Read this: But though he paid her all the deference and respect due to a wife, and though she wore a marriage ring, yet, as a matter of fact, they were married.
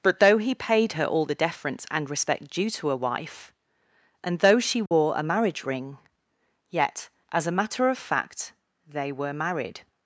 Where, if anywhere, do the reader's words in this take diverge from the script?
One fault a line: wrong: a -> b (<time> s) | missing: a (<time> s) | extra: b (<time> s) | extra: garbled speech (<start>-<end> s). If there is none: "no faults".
no faults